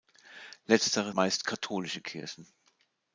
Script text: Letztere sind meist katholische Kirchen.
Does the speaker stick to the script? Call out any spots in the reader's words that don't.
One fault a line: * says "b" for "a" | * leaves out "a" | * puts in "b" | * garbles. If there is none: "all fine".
* leaves out "sind"